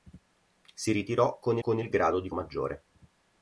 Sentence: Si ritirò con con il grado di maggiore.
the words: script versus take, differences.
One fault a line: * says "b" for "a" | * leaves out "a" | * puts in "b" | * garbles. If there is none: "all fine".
all fine